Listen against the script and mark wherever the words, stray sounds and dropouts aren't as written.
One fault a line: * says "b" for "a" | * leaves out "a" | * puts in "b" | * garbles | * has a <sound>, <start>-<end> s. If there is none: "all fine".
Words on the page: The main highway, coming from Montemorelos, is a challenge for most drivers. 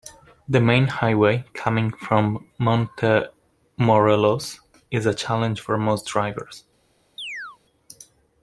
* has a chirp, 7.2-7.6 s